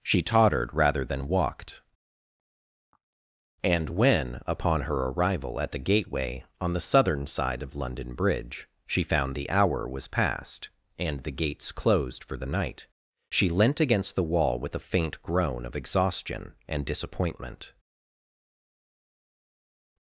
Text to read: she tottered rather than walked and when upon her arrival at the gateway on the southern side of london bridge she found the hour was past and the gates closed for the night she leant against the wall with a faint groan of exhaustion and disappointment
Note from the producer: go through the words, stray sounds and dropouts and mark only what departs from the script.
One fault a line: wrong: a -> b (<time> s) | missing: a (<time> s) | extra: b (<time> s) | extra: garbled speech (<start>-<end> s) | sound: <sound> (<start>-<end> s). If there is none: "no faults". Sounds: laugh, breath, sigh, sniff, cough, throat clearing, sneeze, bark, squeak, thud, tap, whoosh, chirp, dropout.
no faults